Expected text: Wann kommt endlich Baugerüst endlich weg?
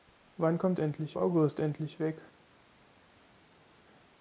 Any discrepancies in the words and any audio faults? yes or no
no